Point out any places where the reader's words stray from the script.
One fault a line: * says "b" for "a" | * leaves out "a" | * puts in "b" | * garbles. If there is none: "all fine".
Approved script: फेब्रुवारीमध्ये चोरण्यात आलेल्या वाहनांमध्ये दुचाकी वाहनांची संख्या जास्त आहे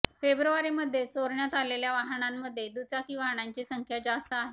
all fine